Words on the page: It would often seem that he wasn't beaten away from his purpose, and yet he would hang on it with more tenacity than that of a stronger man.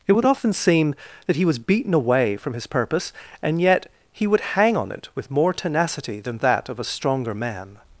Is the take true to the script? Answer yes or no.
no